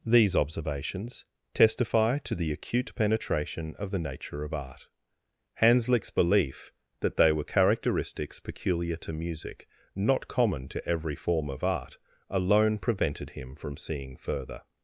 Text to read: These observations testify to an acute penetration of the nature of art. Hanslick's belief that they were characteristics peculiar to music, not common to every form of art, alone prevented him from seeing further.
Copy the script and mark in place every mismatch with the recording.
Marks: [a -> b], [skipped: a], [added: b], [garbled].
These observations testify to [an -> the] acute penetration of the nature of art. Hanslick's belief that they were characteristics peculiar to music, not common to every form of art, alone prevented him from seeing further.